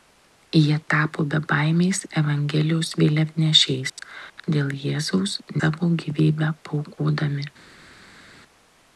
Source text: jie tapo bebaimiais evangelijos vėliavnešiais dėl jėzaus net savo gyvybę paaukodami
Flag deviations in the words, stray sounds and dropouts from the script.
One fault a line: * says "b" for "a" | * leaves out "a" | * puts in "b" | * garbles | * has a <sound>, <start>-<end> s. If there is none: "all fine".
* leaves out "net"